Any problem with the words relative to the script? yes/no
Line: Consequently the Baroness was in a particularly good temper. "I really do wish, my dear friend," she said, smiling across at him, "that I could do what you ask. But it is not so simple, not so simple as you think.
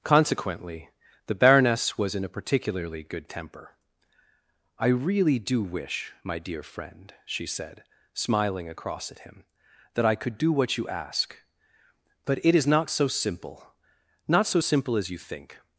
no